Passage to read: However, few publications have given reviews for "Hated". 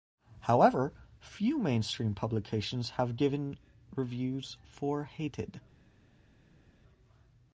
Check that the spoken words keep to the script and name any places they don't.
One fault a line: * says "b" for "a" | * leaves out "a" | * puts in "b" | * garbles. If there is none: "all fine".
* puts in "mainstream"